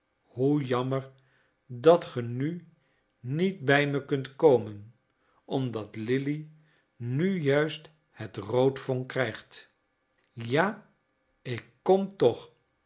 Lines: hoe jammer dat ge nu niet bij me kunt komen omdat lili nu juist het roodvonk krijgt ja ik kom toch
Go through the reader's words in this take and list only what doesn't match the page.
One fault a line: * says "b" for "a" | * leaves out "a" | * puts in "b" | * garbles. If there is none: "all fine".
all fine